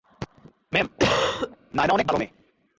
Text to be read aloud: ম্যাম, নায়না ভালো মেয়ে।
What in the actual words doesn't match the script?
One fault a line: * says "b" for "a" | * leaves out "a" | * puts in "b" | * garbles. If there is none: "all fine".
* puts in "অনেক"